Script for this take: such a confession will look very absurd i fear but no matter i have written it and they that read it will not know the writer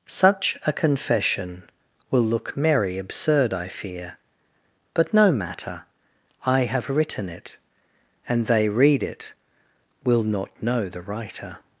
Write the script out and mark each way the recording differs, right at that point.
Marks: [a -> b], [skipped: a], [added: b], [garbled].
such a confession will look [very -> merry] absurd i fear but no matter i have written it and they [skipped: that] read it will not know the writer